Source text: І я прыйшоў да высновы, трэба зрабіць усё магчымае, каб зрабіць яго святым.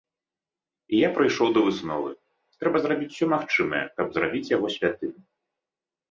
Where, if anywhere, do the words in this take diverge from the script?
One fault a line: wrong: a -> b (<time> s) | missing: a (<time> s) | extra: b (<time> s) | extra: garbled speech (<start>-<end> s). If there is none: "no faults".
no faults